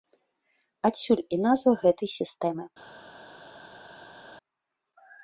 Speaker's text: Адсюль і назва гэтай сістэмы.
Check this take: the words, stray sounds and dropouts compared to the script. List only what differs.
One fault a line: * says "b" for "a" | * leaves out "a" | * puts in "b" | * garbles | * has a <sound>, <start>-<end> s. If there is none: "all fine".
all fine